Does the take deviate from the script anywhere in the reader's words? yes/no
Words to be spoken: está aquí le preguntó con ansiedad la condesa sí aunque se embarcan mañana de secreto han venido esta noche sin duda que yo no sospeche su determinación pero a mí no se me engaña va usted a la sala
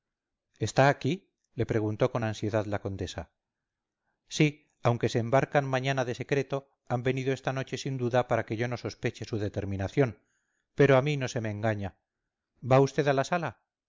yes